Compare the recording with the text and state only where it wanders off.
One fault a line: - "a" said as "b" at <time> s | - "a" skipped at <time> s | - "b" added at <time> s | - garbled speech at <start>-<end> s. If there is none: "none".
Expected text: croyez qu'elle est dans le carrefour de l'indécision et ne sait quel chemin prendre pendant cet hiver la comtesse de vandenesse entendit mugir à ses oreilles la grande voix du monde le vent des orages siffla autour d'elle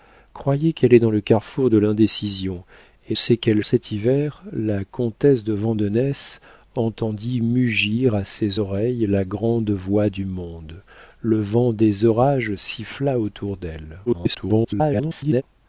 - "ne" skipped at 3.1 s
- "chemin prendre pendant" skipped at 3.6 s
- garbled speech at 14.1-15.4 s